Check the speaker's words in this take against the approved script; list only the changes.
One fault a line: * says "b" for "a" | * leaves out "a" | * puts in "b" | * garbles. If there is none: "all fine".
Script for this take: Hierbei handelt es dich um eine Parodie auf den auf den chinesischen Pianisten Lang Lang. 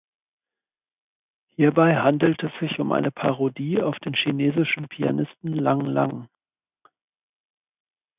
* says "sich" for "dich"
* leaves out "auf den"